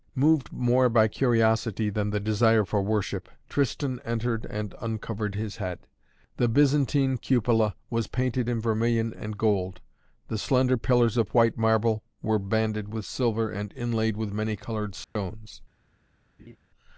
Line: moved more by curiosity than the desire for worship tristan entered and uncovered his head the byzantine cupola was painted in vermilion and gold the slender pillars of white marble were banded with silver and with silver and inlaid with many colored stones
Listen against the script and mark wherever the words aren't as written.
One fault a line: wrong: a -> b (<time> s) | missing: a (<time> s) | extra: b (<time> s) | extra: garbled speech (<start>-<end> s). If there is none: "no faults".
missing: with silver and (13.7 s)